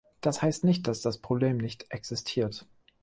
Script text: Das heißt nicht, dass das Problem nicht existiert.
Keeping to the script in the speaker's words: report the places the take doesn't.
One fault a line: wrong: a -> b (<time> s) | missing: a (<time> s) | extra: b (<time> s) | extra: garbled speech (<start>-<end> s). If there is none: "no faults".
no faults